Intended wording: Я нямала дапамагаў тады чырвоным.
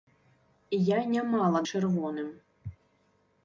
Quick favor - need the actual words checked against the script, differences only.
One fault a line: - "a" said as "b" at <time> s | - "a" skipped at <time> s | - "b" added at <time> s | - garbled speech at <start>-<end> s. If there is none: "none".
- "дапамагаў тады" skipped at 1.6 s